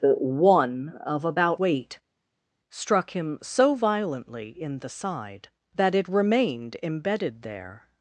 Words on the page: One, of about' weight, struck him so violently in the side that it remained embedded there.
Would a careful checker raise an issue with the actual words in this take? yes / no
no